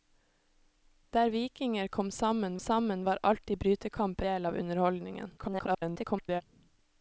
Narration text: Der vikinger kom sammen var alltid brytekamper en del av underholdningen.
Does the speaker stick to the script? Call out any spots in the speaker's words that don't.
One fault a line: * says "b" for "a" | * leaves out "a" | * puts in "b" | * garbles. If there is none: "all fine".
* puts in "sammen"
* leaves out "en"
* garbles